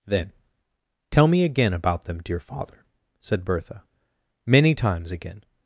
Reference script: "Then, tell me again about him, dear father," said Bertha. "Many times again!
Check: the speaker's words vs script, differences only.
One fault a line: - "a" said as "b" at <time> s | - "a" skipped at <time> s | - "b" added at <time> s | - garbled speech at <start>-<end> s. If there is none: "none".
- "him" said as "them" at 2.0 s